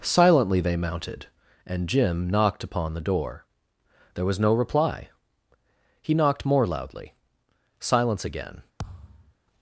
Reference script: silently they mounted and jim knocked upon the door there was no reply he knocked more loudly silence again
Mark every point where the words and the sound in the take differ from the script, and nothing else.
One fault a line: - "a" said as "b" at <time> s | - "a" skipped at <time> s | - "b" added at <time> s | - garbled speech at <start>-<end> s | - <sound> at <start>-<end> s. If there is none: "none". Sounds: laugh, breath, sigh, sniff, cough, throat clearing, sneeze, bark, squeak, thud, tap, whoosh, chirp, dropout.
- thud at 8.8-9.3 s